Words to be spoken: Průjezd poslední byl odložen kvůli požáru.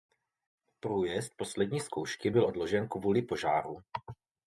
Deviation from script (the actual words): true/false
true